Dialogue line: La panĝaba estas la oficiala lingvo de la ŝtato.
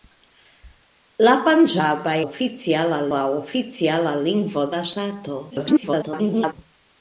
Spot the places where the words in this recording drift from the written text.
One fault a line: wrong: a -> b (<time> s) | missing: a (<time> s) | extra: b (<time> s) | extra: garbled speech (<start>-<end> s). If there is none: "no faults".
wrong: estas -> oficiala (2.3 s)
missing: de (4.7 s)
extra: garbled speech (5.5-6.5 s)